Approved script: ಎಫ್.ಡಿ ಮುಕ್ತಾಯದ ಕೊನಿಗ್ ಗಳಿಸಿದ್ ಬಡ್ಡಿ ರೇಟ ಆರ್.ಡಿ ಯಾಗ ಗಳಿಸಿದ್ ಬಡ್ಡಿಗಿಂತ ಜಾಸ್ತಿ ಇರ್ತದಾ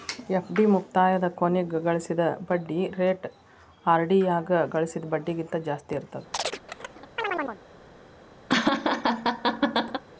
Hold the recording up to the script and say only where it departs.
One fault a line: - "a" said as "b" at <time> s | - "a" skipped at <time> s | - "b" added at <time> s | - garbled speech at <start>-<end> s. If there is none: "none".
none